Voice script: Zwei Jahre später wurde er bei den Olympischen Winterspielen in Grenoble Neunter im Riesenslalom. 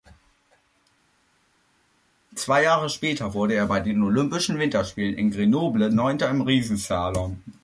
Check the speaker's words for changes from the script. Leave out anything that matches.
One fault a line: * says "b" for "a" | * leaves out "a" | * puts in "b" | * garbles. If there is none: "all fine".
all fine